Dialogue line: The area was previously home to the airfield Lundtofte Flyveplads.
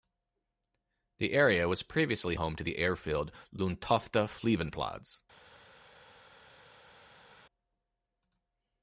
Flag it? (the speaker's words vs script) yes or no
no